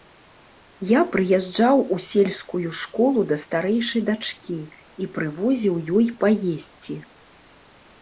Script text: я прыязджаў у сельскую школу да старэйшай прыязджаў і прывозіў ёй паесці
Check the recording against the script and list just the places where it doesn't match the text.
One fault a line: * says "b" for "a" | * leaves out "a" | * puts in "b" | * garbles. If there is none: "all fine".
* says "дачкі" for "прыязджаў"